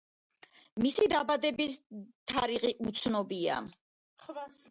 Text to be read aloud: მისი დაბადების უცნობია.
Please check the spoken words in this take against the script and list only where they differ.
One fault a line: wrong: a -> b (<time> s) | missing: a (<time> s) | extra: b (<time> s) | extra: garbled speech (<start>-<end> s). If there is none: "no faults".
extra: თარიღი (2.3 s)